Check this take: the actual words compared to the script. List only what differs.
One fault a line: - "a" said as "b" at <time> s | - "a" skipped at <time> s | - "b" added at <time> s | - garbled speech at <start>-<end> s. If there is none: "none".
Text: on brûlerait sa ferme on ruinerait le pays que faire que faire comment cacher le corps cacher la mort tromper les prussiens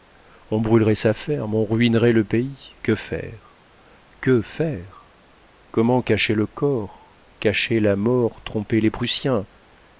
none